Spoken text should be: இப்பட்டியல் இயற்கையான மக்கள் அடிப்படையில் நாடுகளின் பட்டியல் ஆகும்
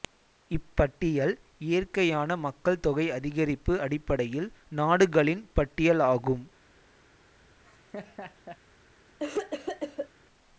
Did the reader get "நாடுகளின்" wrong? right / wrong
right